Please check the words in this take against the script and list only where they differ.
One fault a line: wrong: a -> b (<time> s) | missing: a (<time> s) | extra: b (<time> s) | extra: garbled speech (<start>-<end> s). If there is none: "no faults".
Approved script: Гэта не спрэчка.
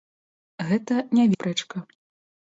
no faults